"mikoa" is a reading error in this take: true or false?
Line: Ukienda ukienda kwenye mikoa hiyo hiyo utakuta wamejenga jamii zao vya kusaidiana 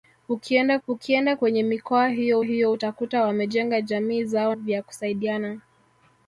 false